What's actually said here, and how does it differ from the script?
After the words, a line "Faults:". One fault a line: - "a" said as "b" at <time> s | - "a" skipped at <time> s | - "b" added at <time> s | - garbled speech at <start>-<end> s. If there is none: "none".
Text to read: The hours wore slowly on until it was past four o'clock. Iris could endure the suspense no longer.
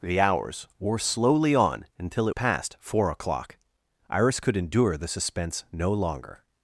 The hours wore slowly on until it past four o'clock. Iris could endure the suspense no longer.
Faults:
- "was" skipped at 2.4 s